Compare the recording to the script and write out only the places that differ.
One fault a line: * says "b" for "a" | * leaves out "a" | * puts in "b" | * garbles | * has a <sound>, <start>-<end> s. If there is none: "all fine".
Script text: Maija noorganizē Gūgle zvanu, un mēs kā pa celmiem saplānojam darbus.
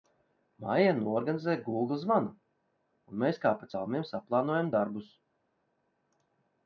all fine